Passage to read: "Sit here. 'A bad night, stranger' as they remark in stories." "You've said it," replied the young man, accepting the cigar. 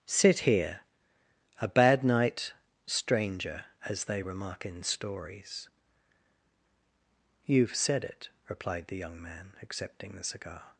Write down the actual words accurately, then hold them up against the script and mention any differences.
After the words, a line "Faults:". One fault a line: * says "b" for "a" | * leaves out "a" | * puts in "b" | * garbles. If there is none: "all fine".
"Sit here. 'A bad night, stranger' as they remark in stories." "You've said it," replied the young man, accepting the cigar.
Faults:
all fine